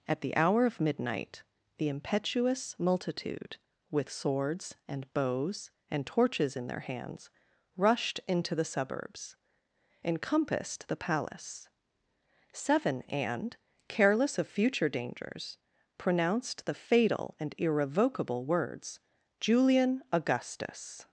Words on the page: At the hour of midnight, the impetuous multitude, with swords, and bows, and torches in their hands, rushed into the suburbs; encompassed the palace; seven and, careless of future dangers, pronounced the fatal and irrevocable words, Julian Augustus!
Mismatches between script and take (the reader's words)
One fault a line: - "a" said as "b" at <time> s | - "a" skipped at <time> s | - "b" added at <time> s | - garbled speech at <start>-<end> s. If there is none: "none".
none